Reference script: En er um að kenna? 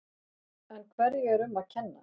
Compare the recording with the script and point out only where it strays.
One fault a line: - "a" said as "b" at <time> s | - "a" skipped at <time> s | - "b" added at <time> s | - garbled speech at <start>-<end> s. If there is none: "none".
- "hverju" added at 0.9 s